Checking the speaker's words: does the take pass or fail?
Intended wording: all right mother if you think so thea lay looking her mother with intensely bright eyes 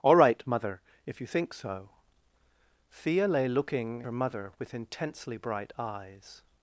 pass